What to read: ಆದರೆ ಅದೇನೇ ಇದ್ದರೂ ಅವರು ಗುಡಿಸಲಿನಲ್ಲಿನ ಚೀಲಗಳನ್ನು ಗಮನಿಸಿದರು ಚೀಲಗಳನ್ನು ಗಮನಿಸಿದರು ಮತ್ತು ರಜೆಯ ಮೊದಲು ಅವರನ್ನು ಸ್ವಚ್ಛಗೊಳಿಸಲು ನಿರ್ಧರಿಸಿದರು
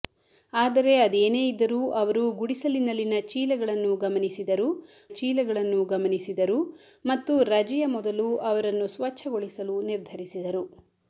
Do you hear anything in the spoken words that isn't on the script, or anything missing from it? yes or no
no